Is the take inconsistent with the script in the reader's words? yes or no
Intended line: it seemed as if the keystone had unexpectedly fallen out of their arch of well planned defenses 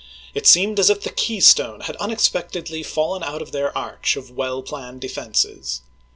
no